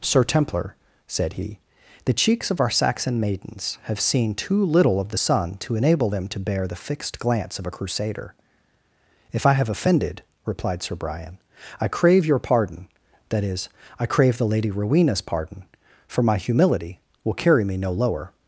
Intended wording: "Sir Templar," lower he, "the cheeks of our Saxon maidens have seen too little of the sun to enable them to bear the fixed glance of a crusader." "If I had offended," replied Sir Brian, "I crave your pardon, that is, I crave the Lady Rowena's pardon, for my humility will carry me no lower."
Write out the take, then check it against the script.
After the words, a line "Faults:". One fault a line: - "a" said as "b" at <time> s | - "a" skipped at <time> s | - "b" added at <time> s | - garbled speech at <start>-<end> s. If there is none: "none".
"Sir Templar," said he, "the cheeks of our Saxon maidens have seen too little of the sun to enable them to bear the fixed glance of a crusader." "If I have offended," replied Sir Brian, "I crave your pardon, that is, I crave the Lady Rowena's pardon, for my humility will carry me no lower."
Faults:
- "lower" said as "said" at 1.1 s
- "had" said as "have" at 9.5 s